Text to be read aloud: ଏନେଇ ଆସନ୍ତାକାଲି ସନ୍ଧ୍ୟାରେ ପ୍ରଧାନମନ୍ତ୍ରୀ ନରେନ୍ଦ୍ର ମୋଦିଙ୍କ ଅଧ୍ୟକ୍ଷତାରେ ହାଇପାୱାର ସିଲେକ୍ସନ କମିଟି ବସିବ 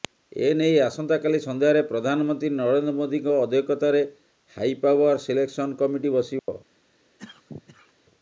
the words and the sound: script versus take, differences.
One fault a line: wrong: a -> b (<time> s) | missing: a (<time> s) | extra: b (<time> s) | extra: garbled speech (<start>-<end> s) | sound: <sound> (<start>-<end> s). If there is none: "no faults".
sound: dropout (6.4-6.5 s)
sound: cough (7.2-7.9 s)